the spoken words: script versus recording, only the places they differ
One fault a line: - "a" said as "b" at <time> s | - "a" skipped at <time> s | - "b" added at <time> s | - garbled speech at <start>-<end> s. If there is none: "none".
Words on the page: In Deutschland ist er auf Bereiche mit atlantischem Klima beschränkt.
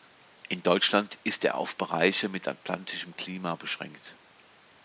none